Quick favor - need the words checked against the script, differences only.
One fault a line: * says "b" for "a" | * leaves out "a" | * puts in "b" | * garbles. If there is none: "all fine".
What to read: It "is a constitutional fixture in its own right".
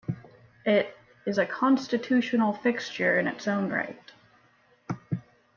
all fine